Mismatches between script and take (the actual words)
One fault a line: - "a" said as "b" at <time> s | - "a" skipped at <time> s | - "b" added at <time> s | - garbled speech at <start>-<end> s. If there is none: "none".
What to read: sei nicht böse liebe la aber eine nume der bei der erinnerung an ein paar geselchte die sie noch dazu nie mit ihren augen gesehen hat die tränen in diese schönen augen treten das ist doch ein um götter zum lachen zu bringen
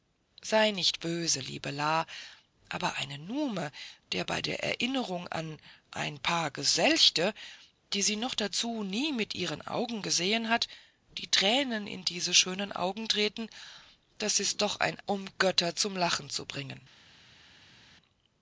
none